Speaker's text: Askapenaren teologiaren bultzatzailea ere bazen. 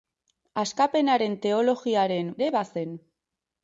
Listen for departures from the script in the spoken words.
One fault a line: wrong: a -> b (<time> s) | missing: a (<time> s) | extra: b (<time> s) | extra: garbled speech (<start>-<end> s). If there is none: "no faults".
missing: bultzatzailea (2.4 s)